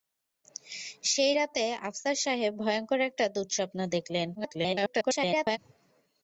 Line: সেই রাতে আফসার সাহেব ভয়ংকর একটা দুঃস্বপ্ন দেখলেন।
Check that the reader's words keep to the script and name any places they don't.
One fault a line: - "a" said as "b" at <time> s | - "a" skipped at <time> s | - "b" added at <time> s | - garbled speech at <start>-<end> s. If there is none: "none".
- garbled speech at 4.3-5.6 s